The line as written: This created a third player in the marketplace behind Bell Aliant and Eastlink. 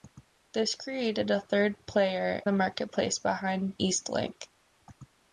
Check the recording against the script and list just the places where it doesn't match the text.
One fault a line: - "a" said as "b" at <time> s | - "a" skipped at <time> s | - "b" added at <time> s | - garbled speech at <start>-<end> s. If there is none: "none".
- "in" skipped at 2.4 s
- "Bell Aliant and" skipped at 3.8 s